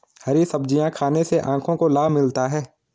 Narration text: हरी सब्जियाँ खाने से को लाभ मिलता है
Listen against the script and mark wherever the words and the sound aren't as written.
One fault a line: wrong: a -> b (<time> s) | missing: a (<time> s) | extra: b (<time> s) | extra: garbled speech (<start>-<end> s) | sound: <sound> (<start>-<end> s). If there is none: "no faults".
extra: आँखों (1.4 s)